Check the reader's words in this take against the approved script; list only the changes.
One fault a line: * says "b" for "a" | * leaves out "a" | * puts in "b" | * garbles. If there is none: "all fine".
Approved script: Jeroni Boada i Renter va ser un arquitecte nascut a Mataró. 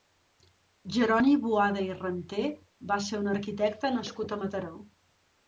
all fine